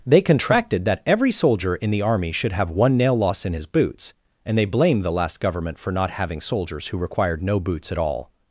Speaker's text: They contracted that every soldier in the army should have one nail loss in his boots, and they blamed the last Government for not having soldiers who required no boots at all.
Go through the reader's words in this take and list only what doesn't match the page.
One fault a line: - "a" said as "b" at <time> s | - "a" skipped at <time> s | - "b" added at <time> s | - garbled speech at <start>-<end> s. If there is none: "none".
none